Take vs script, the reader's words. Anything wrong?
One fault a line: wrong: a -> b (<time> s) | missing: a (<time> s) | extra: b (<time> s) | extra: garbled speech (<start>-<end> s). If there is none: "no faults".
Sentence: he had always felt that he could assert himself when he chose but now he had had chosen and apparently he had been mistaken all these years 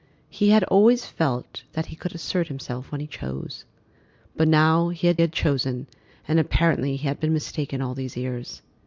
no faults